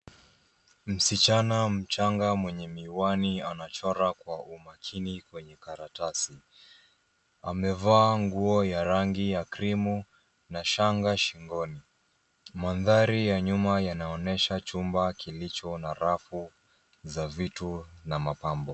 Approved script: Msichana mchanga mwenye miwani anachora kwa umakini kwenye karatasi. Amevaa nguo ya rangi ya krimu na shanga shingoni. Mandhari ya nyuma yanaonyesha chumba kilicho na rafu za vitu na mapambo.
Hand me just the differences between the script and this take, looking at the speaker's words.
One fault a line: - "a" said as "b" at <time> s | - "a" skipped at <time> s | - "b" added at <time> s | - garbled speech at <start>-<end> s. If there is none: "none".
none